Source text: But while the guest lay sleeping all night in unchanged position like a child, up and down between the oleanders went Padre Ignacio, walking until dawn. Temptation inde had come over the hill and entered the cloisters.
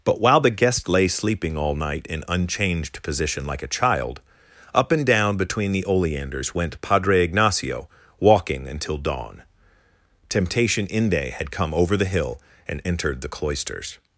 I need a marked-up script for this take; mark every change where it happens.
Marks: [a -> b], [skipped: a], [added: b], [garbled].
But while the guest lay sleeping all night in unchanged position like a child, up and down between the oleanders went Padre Ignacio, walking until dawn. Temptation inde had come over the hill and entered the cloisters.